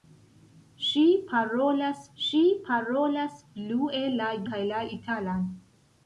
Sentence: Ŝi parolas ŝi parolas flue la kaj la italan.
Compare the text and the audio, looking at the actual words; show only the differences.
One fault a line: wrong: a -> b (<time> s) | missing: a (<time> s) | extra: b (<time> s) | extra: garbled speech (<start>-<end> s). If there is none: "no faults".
no faults